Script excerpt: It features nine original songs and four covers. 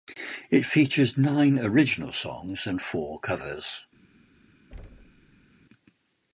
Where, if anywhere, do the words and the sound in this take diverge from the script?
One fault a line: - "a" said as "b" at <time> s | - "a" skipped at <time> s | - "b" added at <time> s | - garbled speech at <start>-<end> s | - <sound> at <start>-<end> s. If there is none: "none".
- thud at 4.7-5.5 s